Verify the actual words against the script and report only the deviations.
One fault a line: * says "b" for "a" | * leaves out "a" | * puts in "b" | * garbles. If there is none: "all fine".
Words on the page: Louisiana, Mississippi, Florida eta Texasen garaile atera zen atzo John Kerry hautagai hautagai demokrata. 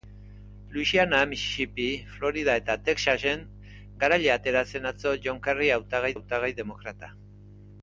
all fine